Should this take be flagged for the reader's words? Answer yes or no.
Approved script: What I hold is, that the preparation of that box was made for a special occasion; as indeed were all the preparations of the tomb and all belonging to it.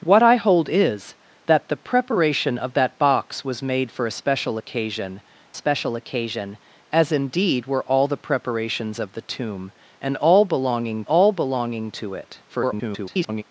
yes